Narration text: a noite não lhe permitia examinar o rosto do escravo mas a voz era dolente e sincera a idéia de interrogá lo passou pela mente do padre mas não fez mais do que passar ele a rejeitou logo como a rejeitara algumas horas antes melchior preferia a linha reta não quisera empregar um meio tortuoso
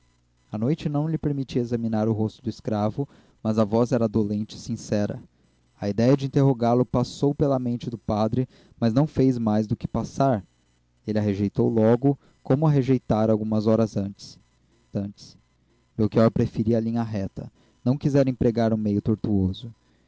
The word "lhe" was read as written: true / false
true